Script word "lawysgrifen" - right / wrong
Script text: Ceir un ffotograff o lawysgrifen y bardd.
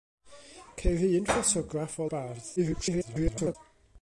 wrong